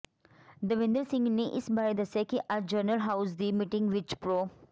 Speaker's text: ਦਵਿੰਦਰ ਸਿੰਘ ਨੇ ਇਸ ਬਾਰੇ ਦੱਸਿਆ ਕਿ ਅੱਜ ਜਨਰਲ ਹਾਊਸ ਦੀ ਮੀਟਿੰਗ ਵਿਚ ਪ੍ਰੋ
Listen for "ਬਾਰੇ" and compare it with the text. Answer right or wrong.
right